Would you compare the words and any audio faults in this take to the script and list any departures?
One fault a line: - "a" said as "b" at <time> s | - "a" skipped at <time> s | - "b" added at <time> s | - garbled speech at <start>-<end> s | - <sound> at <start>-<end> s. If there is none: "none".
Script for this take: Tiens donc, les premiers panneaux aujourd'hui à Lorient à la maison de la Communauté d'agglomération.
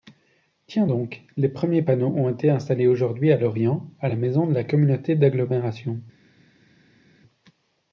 - "ont été installés" added at 2.2 s